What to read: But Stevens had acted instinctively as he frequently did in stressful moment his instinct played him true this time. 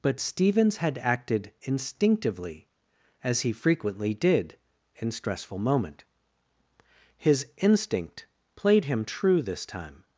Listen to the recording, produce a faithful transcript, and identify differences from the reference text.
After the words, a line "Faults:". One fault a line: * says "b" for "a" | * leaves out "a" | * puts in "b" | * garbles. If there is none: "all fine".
But Stevens had acted instinctively as he frequently did in stressful moment his instinct played him true this time.
Faults:
all fine